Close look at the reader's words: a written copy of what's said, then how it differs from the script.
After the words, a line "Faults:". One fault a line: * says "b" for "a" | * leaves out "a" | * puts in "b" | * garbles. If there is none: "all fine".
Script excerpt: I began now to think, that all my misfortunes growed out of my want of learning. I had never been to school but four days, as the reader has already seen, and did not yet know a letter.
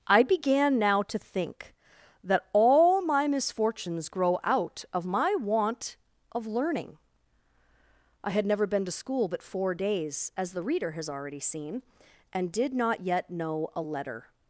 I began now to think, that all my misfortunes grow out of my want of learning. I had never been to school but four days, as the reader has already seen, and did not yet know a letter.
Faults:
* says "grow" for "growed"